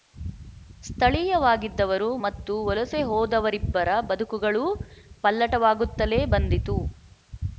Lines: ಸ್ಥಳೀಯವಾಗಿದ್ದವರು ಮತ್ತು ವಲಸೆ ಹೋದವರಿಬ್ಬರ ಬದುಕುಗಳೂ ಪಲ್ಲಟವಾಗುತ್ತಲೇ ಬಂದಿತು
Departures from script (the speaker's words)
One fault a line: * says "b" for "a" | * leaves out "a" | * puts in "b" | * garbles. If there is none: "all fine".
all fine